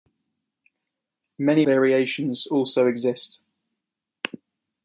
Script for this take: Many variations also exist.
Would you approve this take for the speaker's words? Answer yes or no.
yes